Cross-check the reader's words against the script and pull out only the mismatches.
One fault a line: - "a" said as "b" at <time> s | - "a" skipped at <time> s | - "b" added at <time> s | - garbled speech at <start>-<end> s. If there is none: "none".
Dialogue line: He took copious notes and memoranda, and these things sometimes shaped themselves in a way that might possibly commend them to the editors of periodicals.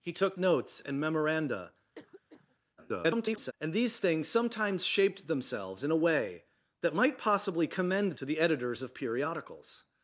- "copious" skipped at 0.3 s
- garbled speech at 2.8-3.5 s
- "them" skipped at 8.1 s